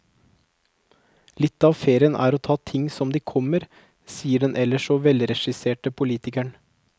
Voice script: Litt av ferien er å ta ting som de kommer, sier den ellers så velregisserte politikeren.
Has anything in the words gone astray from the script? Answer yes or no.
no